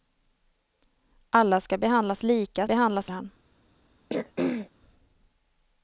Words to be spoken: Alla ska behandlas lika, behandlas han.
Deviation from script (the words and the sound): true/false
true